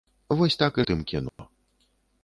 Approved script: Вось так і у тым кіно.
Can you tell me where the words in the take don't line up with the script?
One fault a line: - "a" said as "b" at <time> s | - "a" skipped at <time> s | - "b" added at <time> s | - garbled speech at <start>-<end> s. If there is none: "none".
none